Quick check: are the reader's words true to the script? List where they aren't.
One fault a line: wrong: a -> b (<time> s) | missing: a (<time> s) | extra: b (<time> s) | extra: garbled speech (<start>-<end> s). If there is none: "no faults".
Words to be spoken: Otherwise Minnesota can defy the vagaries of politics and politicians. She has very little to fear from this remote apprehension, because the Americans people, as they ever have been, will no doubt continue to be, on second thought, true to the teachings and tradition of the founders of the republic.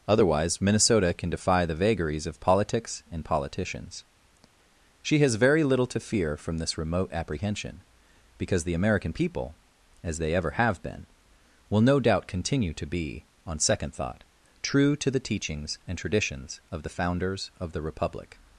wrong: Americans -> American (8.8 s)
wrong: tradition -> traditions (16.0 s)